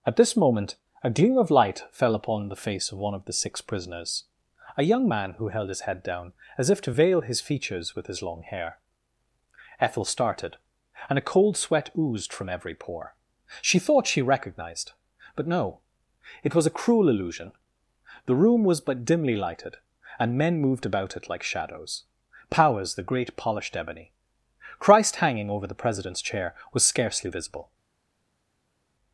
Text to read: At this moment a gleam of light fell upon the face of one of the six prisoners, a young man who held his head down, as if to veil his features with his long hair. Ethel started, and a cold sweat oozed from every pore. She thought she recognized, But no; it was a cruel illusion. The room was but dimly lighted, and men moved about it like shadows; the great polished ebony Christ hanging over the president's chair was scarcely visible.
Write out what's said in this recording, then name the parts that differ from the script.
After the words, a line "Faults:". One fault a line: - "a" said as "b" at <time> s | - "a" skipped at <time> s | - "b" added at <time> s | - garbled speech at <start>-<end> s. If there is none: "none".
At this moment a gleam of light fell upon the face of one of the six prisoners, a young man who held his head down, as if to veil his features with his long hair. Ethel started, and a cold sweat oozed from every pore. She thought she recognized, But no; it was a cruel illusion. The room was but dimly lighted, and men moved about it like shadows; powers the great polished ebony Christ hanging over the president's chair was scarcely visible.
Faults:
- "powers" added at 22.5 s